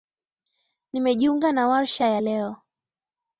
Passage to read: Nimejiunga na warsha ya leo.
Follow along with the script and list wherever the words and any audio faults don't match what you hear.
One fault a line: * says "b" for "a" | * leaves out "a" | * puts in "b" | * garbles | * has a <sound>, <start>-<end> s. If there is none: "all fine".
all fine